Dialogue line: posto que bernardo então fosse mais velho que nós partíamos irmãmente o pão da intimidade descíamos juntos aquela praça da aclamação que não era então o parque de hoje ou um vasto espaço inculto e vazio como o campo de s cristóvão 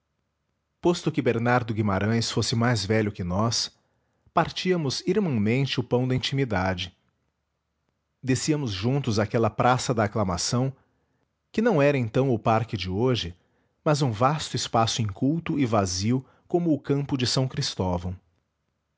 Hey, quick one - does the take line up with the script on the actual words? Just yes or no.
no